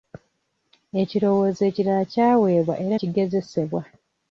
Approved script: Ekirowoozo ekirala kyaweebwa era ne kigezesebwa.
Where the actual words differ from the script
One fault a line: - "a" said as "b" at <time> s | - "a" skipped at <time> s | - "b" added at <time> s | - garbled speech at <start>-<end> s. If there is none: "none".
- "ne" skipped at 3.0 s